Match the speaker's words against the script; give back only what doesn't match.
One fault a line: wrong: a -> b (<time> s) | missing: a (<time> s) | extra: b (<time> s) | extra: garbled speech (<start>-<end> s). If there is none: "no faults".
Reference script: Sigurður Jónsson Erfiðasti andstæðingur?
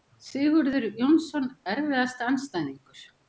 no faults